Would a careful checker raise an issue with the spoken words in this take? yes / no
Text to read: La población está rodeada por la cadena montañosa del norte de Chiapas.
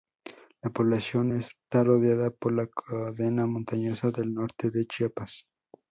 no